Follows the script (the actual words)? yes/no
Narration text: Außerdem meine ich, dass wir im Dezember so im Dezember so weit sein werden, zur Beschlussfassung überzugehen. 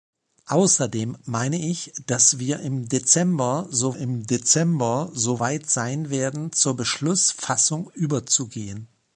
yes